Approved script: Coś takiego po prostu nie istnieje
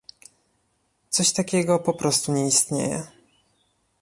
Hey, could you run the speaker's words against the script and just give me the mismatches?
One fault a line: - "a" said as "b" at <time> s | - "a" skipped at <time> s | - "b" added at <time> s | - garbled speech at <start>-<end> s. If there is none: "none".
none